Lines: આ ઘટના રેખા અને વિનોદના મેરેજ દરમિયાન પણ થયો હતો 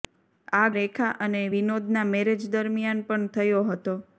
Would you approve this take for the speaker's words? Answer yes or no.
no